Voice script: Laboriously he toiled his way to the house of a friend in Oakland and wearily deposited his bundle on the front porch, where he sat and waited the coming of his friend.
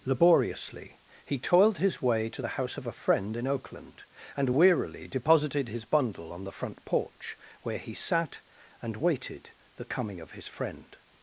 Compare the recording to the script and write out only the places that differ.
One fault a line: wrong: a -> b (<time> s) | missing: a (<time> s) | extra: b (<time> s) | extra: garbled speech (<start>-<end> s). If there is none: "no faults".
no faults